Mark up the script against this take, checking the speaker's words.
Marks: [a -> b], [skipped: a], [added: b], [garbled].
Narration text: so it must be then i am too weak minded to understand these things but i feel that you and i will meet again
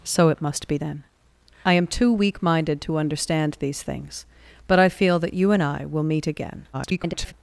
so it must be then i am too weak minded to understand these things but i feel that you and i will meet again [garbled]